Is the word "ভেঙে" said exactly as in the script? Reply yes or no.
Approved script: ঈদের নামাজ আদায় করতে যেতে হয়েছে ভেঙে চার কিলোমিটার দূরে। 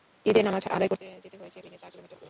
yes